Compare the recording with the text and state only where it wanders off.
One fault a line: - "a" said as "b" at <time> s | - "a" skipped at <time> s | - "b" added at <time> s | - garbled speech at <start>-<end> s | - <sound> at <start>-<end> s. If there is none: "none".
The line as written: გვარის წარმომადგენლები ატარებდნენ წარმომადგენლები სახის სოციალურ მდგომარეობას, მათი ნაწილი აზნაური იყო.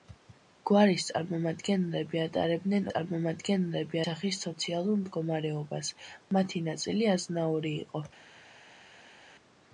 none